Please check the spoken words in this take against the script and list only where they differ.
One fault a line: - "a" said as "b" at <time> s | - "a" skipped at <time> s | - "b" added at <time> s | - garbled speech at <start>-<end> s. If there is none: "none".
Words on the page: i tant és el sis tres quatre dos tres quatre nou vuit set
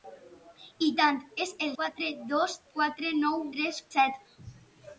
- "sis tres" skipped at 1.7 s
- "tres" skipped at 2.6 s
- "vuit" said as "tres" at 3.6 s